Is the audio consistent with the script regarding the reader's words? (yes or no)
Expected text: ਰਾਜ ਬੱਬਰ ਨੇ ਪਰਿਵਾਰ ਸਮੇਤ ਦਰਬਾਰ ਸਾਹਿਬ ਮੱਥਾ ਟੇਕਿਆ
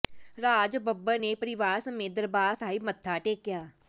yes